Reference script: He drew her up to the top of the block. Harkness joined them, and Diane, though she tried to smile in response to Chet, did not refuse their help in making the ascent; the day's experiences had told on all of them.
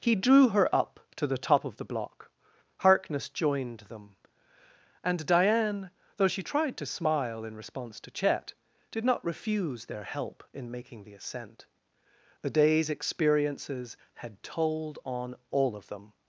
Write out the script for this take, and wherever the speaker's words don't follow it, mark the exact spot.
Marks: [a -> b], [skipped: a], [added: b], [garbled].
He drew her up to the top of the block. Harkness joined them, and Diane, though she tried to smile in response to Chet, did not refuse their help in making the ascent; the day's experiences had told on all of them.